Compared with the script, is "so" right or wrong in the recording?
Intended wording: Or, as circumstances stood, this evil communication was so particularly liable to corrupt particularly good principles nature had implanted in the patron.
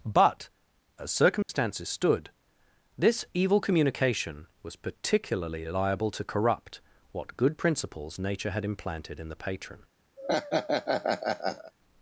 wrong